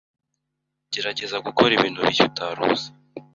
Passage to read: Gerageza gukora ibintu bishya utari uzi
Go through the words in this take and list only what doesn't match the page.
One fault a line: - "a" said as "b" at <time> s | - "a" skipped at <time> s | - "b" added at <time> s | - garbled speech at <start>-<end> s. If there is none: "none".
none